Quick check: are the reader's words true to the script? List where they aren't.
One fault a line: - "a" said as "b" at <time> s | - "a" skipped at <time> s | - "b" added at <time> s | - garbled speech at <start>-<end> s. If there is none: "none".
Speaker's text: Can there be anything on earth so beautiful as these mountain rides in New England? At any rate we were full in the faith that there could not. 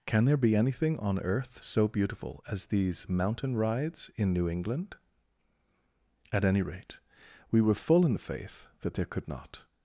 none